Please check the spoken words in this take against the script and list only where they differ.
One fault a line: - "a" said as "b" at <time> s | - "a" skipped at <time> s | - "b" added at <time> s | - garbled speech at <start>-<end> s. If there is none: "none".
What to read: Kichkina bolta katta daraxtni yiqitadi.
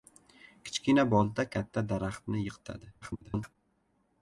- garbled speech at 3.0-3.6 s